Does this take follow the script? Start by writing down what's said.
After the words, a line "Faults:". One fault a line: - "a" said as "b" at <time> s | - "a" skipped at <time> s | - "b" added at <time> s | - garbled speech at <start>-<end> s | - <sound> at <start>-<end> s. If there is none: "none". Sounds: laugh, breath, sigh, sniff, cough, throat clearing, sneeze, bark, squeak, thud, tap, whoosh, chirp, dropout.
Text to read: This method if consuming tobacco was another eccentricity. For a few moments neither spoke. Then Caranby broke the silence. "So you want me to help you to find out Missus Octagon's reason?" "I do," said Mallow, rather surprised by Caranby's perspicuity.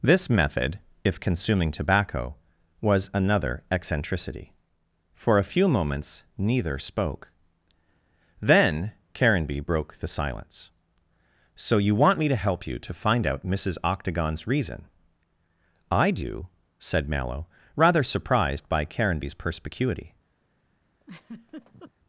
This method if consuming tobacco was another eccentricity. For a few moments neither spoke. Then Caranby broke the silence. "So you want me to help you to find out Missus Octagon's reason?" "I do," said Mallow, rather surprised by Caranby's perspicuity.
Faults:
- laugh at 21.0-21.9 s